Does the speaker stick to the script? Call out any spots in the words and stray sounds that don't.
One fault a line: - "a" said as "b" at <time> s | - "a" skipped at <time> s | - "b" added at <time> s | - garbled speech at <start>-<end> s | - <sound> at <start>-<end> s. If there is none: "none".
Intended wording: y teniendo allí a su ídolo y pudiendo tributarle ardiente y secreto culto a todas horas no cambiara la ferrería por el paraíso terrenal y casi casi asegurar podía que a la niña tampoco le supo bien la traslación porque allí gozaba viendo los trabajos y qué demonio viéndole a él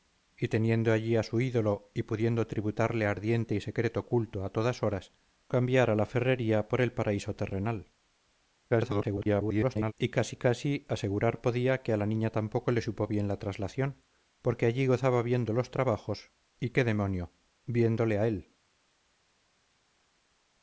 - "no" skipped at 5.1 s
- garbled speech at 8.7-9.9 s